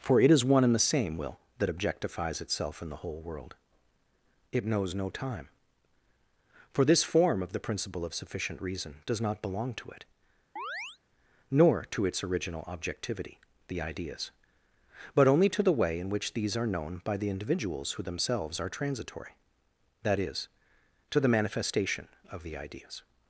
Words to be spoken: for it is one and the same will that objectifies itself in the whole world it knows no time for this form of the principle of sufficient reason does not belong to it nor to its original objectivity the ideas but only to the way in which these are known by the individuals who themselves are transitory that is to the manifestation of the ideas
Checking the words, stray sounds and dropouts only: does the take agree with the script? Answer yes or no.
no